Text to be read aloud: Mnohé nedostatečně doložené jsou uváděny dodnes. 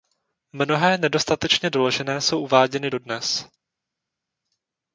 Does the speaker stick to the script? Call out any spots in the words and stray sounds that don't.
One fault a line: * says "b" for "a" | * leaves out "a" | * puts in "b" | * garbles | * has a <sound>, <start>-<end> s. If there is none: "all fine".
all fine